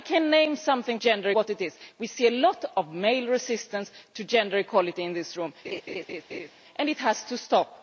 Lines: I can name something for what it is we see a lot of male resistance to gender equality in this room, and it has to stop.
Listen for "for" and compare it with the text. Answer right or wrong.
wrong